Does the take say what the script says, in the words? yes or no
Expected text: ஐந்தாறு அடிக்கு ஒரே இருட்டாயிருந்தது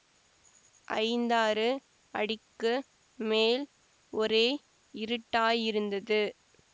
no